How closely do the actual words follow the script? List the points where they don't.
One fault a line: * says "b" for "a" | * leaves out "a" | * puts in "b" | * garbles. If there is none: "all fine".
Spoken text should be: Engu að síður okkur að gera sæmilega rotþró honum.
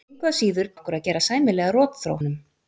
all fine